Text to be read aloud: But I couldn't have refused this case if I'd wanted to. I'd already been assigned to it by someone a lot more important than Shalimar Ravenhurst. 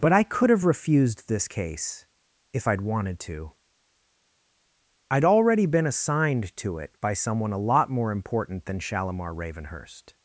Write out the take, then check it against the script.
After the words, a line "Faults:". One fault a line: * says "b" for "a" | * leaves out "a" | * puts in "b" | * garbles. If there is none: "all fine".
But I could have refused this case if I'd wanted to. I'd already been assigned to it by someone a lot more important than Shalimar Ravenhurst.
Faults:
* says "could" for "couldn't"